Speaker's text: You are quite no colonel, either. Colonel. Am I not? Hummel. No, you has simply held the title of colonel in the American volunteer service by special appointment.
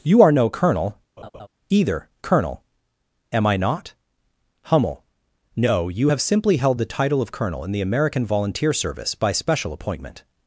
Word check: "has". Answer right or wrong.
wrong